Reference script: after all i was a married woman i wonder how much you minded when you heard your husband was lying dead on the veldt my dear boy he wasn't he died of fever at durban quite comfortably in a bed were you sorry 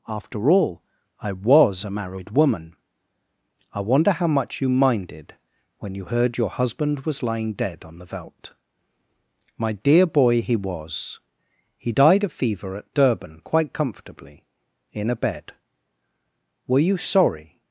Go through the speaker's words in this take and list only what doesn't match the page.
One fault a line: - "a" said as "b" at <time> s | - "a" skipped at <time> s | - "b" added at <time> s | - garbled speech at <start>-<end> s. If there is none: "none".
- "wasn't" said as "was" at 10.5 s